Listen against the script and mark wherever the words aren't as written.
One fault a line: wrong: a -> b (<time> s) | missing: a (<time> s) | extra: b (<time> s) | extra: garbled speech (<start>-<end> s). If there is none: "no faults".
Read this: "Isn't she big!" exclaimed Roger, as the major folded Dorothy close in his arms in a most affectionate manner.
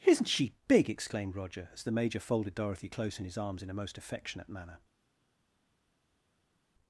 no faults